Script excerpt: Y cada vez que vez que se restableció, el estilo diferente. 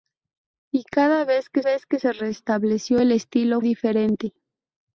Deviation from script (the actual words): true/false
false